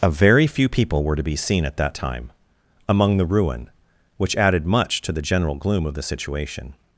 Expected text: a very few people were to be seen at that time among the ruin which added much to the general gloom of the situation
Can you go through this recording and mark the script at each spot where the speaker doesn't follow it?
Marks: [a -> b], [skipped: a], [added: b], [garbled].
a very few people were to be seen at that time among the ruin which added much to the general gloom of the situation